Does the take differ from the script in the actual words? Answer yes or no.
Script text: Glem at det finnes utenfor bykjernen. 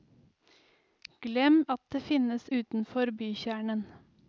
no